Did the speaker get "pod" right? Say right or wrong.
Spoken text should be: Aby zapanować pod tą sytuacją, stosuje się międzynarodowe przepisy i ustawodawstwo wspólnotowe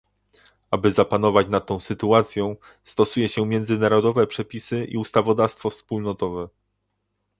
wrong